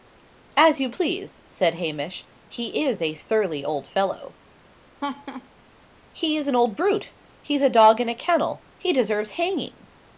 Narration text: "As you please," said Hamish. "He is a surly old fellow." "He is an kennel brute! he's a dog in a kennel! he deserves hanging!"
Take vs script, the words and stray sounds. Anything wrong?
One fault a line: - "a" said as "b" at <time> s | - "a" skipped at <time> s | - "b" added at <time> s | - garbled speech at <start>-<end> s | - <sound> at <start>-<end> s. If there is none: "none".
- laugh at 5.0-5.5 s
- "kennel" said as "old" at 6.6 s